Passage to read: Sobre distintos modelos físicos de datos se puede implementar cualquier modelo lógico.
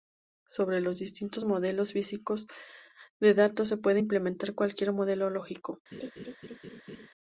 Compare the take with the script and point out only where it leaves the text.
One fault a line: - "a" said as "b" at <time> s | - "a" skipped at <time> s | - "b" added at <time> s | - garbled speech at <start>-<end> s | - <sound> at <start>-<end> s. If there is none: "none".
- "los" added at 0.8 s
- laugh at 5.9-7.1 s